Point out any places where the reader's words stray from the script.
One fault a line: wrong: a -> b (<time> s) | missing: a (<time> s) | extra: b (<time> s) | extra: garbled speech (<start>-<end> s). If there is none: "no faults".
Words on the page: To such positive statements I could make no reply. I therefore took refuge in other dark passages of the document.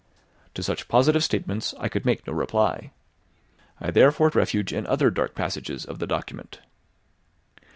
missing: took (4.3 s)